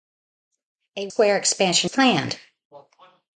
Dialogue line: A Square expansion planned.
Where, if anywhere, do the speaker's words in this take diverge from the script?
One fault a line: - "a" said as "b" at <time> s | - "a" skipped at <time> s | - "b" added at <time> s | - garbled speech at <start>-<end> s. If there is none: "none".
none